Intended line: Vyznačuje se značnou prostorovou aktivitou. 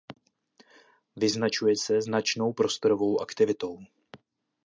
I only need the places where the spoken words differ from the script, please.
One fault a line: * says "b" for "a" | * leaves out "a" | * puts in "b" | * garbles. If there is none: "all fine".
all fine